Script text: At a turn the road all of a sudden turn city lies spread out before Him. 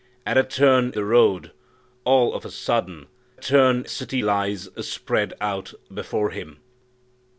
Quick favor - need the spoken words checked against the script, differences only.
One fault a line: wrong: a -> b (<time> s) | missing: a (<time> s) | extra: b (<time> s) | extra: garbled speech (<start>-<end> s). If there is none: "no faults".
no faults